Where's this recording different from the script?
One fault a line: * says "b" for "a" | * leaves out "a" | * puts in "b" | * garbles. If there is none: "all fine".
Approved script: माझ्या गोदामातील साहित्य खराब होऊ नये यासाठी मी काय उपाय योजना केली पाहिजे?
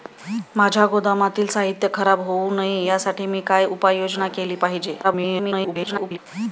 * garbles